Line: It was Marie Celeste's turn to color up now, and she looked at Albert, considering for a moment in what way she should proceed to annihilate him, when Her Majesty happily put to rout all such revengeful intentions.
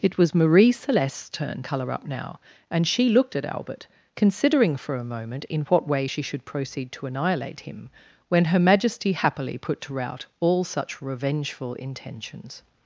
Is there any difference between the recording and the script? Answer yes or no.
yes